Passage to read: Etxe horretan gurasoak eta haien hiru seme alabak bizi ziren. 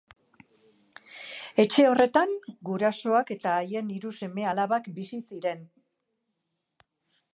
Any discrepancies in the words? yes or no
no